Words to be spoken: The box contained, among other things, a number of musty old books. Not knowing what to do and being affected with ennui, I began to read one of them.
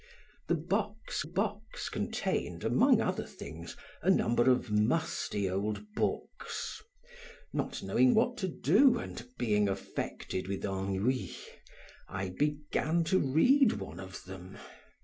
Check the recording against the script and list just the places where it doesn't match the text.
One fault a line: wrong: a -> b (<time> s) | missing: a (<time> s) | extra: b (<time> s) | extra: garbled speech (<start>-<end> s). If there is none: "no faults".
extra: box (1.2 s)